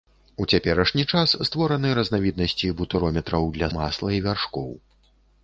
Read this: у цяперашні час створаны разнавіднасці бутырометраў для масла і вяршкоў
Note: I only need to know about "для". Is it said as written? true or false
true